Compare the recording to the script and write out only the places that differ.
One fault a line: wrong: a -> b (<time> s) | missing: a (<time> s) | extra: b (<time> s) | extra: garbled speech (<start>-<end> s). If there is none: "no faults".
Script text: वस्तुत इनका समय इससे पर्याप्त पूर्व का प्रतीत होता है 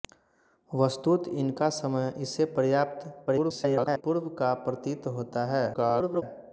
extra: garbled speech (3.3-4.0 s)
extra: garbled speech (5.7-6.2 s)